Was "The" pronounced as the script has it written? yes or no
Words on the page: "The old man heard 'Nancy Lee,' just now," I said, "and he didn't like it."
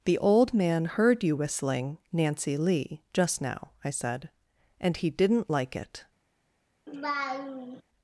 yes